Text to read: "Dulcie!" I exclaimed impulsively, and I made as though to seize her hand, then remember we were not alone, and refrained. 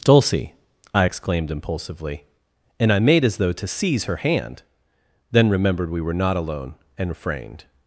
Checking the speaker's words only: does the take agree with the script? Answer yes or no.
no